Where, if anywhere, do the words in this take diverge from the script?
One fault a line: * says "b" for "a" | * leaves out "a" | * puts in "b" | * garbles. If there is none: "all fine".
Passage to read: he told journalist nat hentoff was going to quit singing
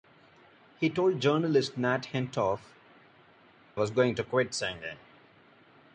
all fine